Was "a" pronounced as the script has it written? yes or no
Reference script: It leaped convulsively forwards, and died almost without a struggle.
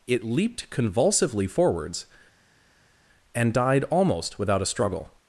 yes